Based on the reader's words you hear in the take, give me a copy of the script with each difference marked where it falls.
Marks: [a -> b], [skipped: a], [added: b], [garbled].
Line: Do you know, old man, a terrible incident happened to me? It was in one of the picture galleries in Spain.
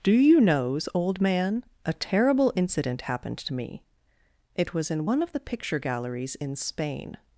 Do you [know, -> knows] old man, a terrible incident happened to me? It was in one of the picture galleries in Spain.